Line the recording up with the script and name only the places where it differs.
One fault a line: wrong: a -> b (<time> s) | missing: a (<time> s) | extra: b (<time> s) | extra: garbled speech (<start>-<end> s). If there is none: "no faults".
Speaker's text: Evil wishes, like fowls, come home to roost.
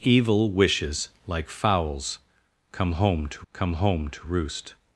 extra: come home to (3.5 s)